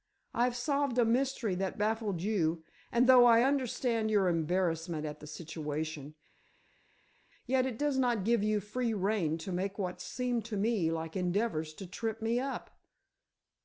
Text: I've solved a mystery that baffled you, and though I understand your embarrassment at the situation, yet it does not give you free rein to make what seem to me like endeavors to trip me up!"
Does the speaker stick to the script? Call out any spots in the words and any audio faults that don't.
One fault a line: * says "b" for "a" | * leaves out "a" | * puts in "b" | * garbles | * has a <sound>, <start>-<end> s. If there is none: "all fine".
all fine